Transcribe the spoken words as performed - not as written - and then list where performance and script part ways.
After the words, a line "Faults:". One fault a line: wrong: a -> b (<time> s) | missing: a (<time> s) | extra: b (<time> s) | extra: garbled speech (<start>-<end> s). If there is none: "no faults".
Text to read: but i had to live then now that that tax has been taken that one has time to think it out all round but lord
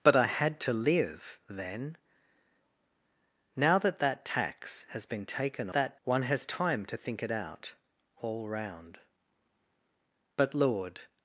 but i had to live then now that that tax has been taken that one has time to think it out all round but lord
Faults:
no faults